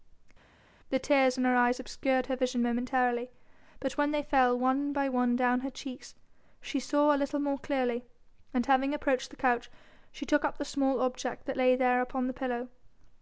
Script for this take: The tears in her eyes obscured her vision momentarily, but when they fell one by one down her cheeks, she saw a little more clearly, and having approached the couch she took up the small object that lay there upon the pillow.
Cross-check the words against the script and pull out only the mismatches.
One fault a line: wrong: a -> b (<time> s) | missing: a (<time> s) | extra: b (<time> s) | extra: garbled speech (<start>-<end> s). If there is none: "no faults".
no faults